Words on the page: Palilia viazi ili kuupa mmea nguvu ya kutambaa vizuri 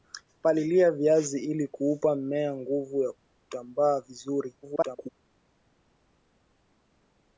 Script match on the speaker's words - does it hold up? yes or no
no